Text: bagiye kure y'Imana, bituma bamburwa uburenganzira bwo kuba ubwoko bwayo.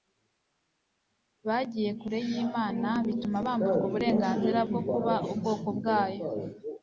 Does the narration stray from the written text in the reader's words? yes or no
no